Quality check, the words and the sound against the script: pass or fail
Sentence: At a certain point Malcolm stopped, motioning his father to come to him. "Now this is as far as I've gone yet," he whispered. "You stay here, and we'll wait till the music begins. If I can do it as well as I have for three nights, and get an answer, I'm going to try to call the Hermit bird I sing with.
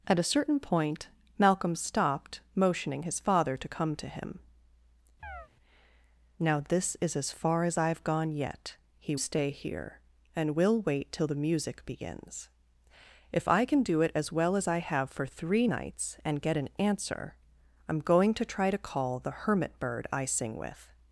fail